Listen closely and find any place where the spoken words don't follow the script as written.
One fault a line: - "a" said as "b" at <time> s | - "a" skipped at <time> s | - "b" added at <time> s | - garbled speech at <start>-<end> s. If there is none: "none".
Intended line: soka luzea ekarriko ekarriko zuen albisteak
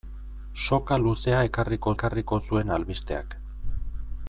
none